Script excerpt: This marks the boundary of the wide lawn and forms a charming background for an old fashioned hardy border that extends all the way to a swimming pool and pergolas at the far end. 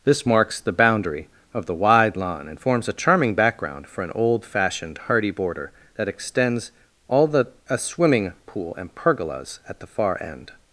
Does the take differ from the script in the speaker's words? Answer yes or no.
yes